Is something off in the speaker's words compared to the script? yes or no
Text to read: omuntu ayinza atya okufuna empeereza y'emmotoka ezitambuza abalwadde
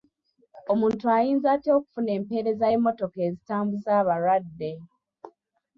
no